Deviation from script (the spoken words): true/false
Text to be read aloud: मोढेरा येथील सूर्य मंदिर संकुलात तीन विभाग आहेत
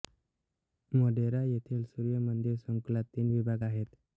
false